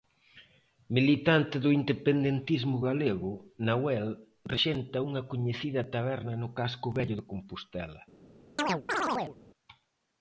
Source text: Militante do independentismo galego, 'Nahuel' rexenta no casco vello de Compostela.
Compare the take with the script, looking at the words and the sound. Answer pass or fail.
fail